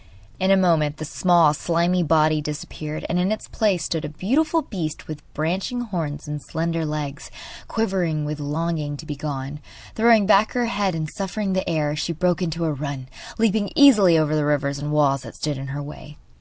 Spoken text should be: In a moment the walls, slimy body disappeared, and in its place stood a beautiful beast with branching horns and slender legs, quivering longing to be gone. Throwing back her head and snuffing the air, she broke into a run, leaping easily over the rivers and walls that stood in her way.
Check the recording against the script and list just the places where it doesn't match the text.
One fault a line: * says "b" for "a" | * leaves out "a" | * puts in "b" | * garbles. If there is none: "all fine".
* says "small" for "walls"
* puts in "with"